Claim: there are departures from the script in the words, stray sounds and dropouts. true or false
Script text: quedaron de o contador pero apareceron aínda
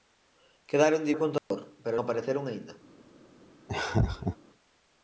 true